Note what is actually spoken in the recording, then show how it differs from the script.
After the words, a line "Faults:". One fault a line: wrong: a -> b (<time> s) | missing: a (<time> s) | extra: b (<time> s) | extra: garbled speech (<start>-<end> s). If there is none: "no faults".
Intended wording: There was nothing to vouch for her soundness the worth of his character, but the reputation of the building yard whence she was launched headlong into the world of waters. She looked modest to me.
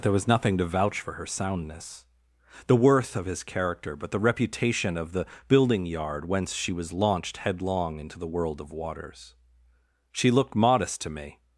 There was nothing to vouch for her soundness the worth of his character, but the reputation of the building yard whence she was launched headlong into the world of waters. She looked modest to me.
Faults:
no faults